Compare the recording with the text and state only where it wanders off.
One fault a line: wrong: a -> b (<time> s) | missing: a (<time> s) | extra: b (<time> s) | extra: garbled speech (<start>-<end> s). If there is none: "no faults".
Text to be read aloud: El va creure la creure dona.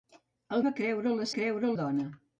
no faults